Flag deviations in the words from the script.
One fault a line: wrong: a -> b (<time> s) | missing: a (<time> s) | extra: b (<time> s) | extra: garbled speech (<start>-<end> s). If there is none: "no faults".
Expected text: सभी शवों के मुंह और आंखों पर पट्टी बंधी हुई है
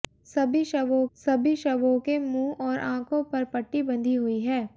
extra: सभी शवों (1.2 s)